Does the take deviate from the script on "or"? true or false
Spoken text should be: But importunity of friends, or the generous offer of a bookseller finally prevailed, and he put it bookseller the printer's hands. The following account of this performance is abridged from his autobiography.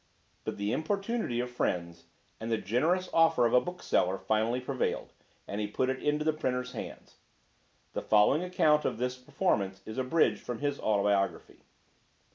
true